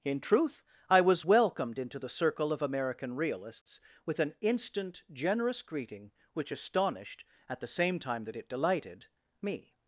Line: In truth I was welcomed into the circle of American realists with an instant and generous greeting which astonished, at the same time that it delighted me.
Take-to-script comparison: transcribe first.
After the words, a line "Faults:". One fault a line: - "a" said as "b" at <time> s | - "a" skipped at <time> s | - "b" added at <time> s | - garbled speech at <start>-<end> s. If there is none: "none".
In truth I was welcomed into the circle of American realists with an instant generous greeting which astonished, at the same time that it delighted me.
Faults:
- "and" skipped at 5.0 s